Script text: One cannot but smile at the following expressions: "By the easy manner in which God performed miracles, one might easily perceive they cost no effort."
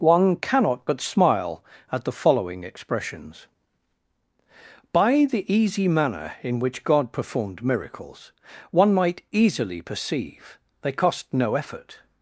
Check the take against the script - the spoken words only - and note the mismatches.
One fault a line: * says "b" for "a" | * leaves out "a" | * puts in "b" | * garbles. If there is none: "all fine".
all fine